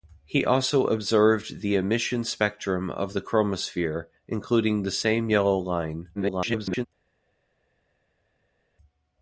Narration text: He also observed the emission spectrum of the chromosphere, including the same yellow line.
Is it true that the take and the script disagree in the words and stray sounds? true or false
true